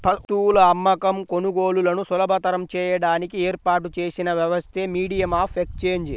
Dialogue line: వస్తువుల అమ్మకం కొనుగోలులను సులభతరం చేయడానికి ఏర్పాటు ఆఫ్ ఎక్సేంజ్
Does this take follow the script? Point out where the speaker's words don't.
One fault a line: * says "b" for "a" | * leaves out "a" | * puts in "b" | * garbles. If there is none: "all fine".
* puts in "చేసిన వ్యవస్థే మీడియం"